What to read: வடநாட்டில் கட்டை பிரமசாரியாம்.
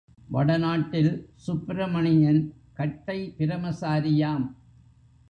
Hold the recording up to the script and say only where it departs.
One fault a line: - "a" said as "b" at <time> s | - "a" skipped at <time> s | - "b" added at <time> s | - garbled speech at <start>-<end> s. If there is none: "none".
- "சுப்பிரமணியன்" added at 1.3 s